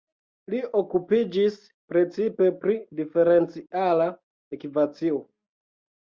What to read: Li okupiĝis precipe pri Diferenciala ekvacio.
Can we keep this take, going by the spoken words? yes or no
yes